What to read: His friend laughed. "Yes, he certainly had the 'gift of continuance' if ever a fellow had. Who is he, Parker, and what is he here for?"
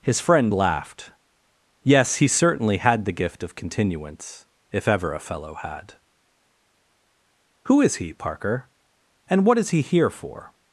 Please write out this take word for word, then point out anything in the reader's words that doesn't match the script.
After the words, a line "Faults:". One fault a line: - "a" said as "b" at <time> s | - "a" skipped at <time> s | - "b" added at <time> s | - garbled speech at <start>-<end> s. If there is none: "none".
His friend laughed. "Yes, he certainly had the 'gift of continuance' if ever a fellow had. Who is he, Parker, and what is he here for?"
Faults:
none